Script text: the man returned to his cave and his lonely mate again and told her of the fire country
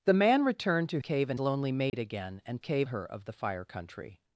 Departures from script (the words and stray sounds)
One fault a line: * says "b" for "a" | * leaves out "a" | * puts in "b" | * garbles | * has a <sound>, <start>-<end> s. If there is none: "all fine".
* leaves out "his"
* leaves out "his"
* has a dropout, 1.9-1.9 s
* says "cave" for "told"